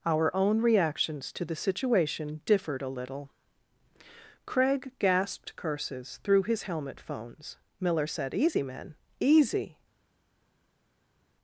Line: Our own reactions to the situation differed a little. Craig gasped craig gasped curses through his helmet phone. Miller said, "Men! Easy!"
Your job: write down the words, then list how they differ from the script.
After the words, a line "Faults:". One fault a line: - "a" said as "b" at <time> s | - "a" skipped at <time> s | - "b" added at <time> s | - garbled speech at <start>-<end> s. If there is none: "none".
Our own reactions to the situation differed a little. Craig gasped curses through his helmet phones. Miller said, "Easy, men! Easy!"
Faults:
- "craig gasped" skipped at 5.6 s
- "phone" said as "phones" at 7.0 s
- "Easy" added at 8.3 s